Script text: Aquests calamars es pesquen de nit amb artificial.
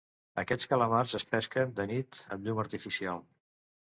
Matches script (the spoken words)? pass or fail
fail